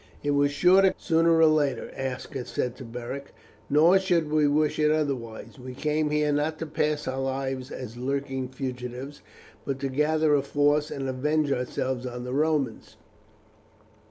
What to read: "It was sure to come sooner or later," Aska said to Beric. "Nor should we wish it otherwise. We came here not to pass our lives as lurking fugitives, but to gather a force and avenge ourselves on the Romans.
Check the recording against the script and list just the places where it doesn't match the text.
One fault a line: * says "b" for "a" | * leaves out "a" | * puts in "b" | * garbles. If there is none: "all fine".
* leaves out "come"